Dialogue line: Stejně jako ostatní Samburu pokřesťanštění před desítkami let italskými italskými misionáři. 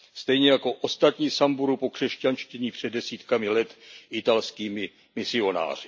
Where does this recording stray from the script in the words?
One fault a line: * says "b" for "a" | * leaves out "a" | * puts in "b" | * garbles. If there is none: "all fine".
* leaves out "italskými"